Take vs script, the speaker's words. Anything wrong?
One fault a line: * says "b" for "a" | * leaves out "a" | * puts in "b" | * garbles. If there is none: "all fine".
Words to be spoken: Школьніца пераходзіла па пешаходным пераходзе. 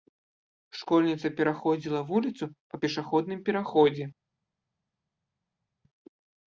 * puts in "вуліцу"